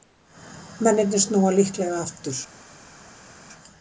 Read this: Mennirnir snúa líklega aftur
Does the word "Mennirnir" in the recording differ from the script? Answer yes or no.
no